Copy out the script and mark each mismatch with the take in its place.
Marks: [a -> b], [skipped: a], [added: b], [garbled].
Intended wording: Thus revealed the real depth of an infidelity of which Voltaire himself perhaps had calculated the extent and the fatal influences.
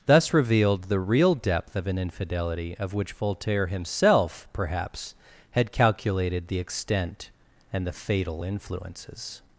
Thus revealed the real depth of an infidelity of which Voltaire himself perhaps had calculated the extent and the fatal influences.